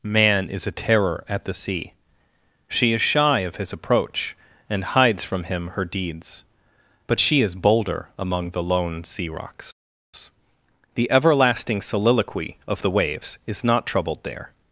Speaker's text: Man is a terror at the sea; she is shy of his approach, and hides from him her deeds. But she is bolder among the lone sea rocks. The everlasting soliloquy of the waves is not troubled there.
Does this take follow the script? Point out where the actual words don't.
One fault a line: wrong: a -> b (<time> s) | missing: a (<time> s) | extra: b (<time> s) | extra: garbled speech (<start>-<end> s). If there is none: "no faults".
no faults